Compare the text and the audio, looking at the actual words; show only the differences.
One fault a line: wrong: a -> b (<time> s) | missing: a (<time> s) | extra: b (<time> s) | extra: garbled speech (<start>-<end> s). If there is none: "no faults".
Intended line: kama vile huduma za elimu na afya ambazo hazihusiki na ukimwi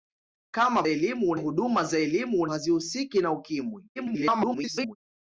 wrong: vile -> elimu (0.9 s)
missing: na afya ambazo (2.5 s)
extra: garbled speech (4.0-5.0 s)